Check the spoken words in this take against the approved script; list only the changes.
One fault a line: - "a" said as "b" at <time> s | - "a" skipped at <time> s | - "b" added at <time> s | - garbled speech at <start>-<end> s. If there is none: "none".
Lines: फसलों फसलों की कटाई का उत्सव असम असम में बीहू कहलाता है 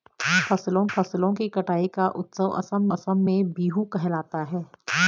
none